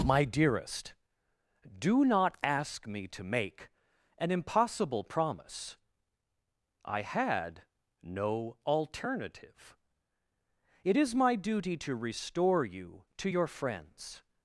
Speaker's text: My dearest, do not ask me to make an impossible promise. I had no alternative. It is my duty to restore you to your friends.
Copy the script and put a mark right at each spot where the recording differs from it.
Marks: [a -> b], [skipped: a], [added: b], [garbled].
My dearest, do not ask me to make an impossible promise. I had no alternative. It is my duty to restore you to your friends.